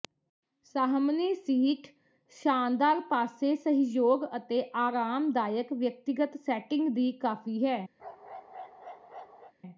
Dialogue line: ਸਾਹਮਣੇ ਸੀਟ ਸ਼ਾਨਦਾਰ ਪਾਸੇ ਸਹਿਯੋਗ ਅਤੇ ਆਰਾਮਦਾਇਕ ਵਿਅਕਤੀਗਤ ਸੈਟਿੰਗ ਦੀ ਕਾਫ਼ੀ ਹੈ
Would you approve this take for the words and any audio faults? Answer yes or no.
no